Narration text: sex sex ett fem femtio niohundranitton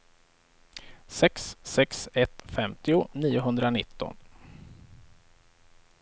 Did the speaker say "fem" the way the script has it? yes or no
no